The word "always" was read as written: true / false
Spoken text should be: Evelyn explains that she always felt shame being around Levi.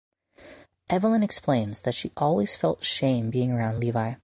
true